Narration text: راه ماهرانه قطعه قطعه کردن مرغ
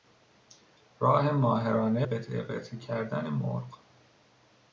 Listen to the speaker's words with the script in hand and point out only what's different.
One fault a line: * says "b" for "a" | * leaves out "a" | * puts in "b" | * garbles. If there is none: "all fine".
all fine